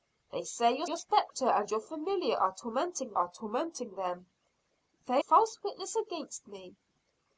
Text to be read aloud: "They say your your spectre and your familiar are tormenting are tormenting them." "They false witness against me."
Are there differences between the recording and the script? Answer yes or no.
no